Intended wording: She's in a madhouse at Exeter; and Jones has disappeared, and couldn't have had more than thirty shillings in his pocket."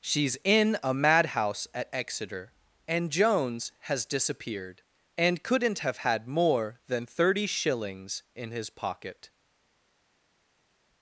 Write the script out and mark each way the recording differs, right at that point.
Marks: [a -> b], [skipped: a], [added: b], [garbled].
She's in a madhouse at Exeter; and Jones has disappeared, and couldn't have had more than thirty shillings in his pocket."